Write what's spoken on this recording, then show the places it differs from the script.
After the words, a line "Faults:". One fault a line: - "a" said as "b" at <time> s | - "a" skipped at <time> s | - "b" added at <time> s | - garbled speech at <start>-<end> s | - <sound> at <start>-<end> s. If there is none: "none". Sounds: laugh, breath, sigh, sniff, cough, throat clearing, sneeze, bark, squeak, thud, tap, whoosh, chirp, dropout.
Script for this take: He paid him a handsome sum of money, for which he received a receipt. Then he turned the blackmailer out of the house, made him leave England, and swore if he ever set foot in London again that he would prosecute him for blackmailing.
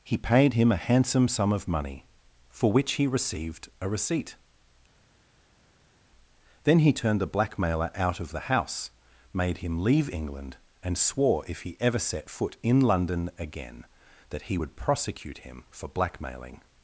He paid him a handsome sum of money, for which he received a receipt. Then he turned the blackmailer out of the house, made him leave England, and swore if he ever set foot in London again that he would prosecute him for blackmailing.
Faults:
none